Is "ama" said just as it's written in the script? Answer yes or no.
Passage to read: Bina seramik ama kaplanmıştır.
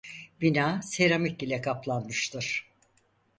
no